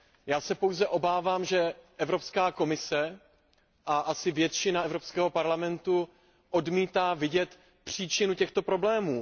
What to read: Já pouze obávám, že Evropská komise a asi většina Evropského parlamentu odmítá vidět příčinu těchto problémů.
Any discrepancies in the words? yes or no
yes